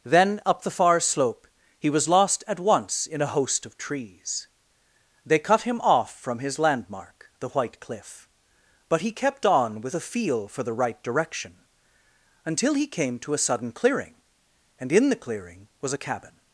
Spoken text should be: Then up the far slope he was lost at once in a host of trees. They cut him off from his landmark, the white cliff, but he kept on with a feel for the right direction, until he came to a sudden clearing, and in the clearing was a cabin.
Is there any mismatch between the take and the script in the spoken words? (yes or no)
no